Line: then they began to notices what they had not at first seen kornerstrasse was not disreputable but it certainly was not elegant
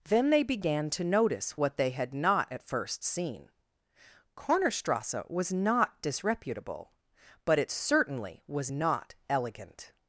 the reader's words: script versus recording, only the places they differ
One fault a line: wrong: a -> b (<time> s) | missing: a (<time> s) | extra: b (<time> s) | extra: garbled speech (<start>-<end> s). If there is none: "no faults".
wrong: notices -> notice (1.0 s)